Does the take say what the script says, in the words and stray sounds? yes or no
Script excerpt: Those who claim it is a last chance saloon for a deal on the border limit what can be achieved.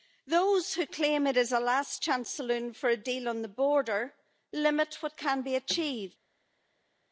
yes